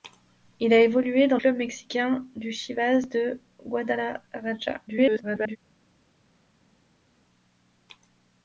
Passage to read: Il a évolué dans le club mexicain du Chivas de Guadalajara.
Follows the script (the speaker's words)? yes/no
no